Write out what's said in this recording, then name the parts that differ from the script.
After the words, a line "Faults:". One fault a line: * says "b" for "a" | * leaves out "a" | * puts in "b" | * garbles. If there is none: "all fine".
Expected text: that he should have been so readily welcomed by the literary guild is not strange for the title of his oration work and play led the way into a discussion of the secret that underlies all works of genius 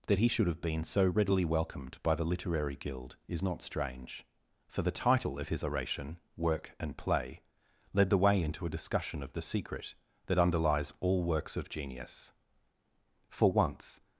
that he should have been so readily welcomed by the literary guild is not strange for the title of his oration work and play led the way into a discussion of the secret that underlies all works of genius for once
Faults:
* puts in "for once"